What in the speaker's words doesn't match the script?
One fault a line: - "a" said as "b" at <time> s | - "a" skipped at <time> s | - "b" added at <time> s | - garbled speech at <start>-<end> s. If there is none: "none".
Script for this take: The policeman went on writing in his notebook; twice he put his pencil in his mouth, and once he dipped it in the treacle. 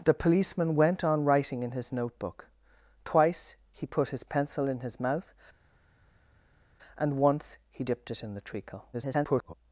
- garbled speech at 8.9-9.5 s